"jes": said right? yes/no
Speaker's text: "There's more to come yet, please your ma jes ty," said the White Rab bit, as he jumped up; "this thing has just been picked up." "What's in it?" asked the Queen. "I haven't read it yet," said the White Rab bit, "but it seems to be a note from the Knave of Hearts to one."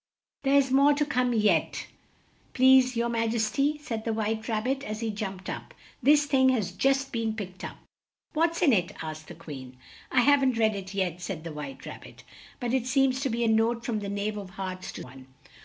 yes